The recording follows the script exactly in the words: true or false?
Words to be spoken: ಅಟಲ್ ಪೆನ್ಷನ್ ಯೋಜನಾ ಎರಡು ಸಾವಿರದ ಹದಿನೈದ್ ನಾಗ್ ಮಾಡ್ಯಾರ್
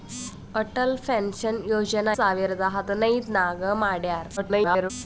false